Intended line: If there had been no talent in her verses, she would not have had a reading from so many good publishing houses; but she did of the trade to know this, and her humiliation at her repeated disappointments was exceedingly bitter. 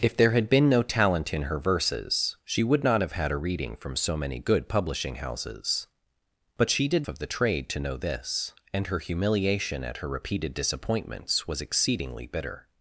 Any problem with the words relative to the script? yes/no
no